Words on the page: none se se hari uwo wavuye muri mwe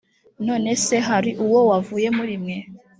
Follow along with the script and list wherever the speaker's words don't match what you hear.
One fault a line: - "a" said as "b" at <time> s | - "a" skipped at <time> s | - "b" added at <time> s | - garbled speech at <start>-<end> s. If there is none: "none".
- "se" skipped at 1.0 s